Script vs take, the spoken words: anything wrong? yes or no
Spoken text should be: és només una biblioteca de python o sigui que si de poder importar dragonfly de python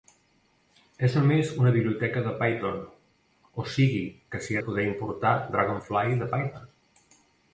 no